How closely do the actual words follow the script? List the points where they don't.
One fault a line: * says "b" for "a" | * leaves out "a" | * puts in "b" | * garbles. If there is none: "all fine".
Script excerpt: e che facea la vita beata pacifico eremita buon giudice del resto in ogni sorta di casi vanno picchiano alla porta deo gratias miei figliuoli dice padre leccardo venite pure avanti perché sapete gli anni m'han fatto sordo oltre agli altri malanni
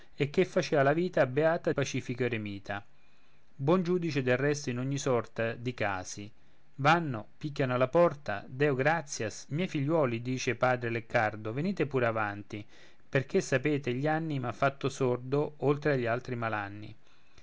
all fine